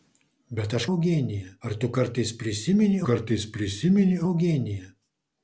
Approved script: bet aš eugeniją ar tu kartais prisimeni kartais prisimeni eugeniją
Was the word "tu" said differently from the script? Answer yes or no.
no